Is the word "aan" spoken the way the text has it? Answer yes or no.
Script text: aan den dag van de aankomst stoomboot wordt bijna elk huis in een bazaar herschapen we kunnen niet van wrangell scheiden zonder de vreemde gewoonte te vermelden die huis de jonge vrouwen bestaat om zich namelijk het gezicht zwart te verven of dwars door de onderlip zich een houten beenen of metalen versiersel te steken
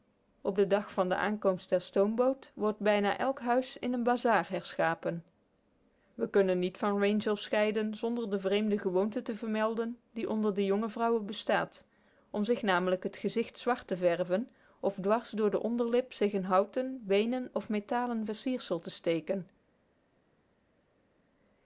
no